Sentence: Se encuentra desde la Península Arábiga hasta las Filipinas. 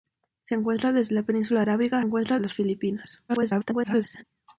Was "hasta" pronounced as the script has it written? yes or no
no